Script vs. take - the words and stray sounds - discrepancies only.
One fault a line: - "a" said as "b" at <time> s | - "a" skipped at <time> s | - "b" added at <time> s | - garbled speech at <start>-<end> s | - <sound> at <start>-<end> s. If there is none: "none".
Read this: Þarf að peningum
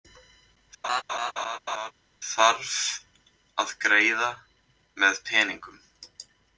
- laugh at 0.8-1.9 s
- "greiða með" added at 3.9 s